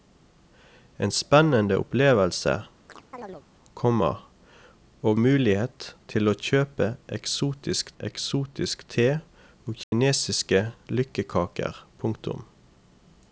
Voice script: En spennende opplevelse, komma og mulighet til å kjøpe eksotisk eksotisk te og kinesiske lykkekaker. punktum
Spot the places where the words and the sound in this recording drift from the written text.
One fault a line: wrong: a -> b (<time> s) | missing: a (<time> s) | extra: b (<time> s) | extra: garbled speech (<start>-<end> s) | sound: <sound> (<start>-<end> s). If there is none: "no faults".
sound: chirp (2.9-3.5 s)
sound: dropout (9.8-9.9 s)